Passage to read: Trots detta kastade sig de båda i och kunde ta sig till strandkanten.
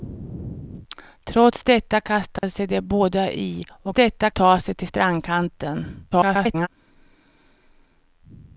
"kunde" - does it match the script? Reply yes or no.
no